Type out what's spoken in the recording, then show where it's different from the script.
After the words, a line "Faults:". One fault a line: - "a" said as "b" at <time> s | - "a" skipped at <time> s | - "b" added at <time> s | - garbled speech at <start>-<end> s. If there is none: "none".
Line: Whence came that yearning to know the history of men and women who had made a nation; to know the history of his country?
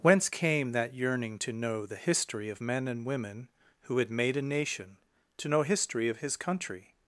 Whence came that yearning to know the history of men and women who had made a nation; to know history of his country?
Faults:
- "the" skipped at 5.6 s